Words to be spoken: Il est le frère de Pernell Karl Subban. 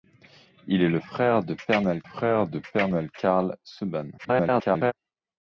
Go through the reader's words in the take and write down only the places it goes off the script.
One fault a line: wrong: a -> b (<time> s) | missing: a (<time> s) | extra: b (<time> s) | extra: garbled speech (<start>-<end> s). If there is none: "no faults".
extra: frère de Pernell (2.0 s)
extra: garbled speech (4.2-4.9 s)